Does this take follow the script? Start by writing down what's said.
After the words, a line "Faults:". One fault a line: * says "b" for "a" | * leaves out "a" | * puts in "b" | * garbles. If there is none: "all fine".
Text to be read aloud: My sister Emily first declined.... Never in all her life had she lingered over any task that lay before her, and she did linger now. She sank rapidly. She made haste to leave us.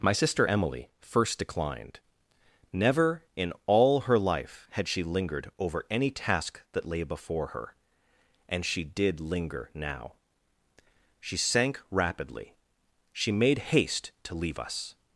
My sister Emily first declined.... Never in all her life had she lingered over any task that lay before her, and she did linger now. She sank rapidly. She made haste to leave us.
Faults:
all fine